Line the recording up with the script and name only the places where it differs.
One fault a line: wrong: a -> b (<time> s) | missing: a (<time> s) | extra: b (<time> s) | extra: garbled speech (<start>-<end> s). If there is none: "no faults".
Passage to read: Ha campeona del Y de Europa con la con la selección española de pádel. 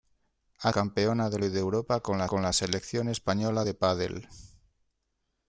no faults